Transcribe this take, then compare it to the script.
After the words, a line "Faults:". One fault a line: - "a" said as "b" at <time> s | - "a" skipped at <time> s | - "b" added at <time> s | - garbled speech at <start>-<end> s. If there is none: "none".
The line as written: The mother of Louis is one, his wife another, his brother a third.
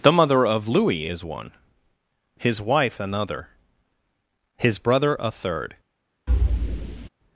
The mother of Louis is one, his wife another, his brother a third.
Faults:
none